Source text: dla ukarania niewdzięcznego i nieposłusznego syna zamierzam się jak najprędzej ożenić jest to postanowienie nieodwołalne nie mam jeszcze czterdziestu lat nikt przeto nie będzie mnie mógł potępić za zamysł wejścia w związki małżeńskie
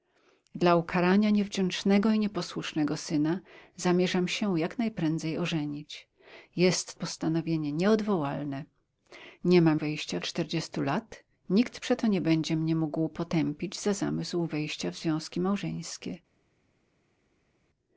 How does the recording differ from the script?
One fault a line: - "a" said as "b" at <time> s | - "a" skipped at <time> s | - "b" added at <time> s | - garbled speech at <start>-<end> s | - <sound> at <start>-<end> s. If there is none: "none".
- "to" skipped at 7.0 s
- "jeszcze" said as "wejścia" at 9.7 s